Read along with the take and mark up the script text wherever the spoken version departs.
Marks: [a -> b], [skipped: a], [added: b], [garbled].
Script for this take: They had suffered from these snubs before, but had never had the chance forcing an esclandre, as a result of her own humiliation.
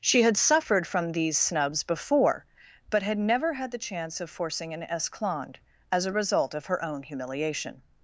[They -> She] had suffered from these snubs before, but had never had the chance [added: of] forcing an esclandre, as a result of her own humiliation.